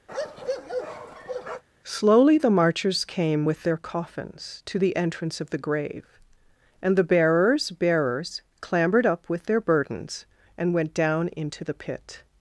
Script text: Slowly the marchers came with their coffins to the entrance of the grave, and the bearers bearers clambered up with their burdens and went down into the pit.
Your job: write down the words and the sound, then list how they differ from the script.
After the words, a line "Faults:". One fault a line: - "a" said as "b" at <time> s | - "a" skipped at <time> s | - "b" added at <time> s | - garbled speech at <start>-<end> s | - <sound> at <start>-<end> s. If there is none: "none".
Slowly the marchers came with their coffins to the entrance of the grave, and the bearers bearers clambered up with their burdens and went down into the pit.
Faults:
- bark at 0.1-1.6 s